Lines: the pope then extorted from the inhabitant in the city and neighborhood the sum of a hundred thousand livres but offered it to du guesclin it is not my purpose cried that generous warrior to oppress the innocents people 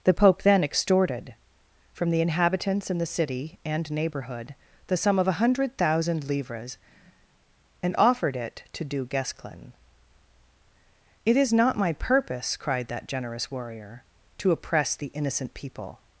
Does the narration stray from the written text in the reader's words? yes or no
yes